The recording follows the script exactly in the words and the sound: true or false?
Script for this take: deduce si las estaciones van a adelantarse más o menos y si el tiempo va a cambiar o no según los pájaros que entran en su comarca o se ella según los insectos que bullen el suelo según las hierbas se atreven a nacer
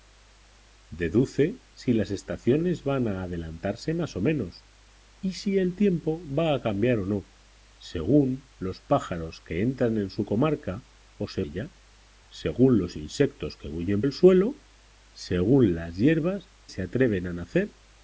true